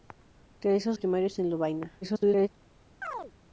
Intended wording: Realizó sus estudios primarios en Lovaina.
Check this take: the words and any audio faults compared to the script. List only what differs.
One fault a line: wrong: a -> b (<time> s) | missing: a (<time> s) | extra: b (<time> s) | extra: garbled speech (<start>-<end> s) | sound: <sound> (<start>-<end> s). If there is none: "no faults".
missing: sus estudios (0.9 s)
extra: garbled speech (2.0-2.5 s)
sound: chirp (3.0-3.3 s)